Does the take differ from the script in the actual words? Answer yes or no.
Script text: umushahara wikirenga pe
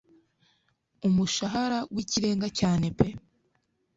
yes